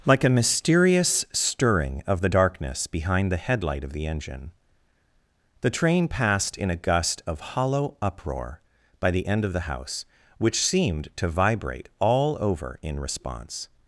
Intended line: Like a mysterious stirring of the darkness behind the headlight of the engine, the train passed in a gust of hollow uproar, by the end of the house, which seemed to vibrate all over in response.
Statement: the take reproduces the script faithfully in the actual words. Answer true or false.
true